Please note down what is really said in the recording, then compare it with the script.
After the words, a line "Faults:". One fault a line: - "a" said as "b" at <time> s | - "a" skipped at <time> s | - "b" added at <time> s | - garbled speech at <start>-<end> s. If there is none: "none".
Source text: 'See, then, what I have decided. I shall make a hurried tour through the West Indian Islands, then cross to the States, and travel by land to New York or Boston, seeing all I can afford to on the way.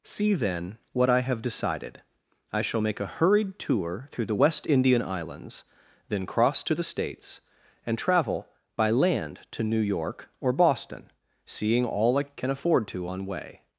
'See, then, what I have decided. I shall make a hurried tour through the West Indian Islands, then cross to the States, and travel by land to New York or Boston, seeing all I can afford to on way.
Faults:
- "the" skipped at 13.2 s